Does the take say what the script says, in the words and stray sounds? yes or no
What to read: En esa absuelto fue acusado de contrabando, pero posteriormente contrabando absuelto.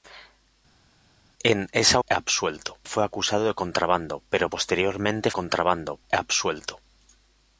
yes